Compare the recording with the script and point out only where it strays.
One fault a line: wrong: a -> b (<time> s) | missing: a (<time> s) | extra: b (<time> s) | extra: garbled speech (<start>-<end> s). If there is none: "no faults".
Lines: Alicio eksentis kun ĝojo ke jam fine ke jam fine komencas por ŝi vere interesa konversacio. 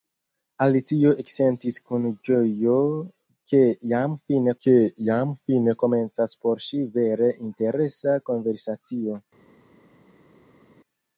no faults